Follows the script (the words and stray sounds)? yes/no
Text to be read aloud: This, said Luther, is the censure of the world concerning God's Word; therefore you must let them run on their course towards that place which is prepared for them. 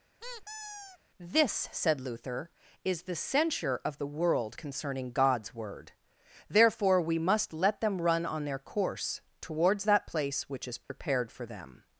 no